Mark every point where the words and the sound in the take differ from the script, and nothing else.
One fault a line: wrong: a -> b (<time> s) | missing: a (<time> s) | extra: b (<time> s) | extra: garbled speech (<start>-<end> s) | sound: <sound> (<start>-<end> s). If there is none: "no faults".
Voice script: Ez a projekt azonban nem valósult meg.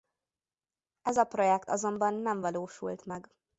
no faults